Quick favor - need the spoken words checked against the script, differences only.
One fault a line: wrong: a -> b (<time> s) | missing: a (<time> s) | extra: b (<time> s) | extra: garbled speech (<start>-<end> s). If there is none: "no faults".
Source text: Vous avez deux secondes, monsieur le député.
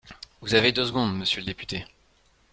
no faults